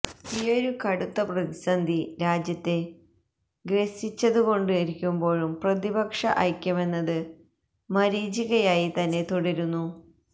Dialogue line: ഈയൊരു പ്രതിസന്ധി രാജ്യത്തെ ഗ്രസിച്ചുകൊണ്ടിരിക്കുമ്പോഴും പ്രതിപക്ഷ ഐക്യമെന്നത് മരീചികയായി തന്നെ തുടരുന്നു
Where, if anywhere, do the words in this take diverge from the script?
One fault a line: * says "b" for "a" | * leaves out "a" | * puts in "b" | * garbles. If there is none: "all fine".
* puts in "കടുത്ത"